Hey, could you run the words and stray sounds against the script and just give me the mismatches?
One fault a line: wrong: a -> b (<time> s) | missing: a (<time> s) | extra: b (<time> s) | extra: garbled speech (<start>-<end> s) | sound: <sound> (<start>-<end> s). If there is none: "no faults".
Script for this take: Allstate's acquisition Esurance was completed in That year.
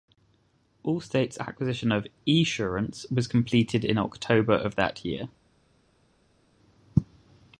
extra: of (1.9 s)
extra: October of (4.0 s)